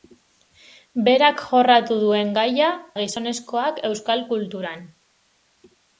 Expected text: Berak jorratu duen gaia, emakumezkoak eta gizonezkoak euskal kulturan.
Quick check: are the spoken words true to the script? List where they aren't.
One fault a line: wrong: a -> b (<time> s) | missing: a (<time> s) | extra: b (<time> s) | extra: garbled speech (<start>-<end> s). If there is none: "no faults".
missing: emakumezkoak eta (2.7 s)